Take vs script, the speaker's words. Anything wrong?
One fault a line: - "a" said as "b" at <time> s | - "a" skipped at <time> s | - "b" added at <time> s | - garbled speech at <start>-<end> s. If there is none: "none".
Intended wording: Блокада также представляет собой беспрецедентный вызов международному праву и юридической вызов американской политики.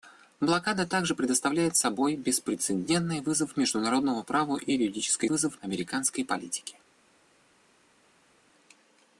none